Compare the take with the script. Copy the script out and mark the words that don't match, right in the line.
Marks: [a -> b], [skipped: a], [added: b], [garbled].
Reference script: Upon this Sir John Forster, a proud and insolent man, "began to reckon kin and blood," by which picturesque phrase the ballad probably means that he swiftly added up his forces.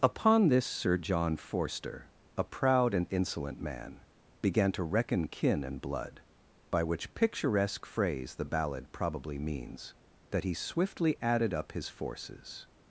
Upon this Sir John Forster, a proud and insolent man, "began to reckon kin and blood," by which picturesque phrase the ballad probably means that he swiftly added up his forces.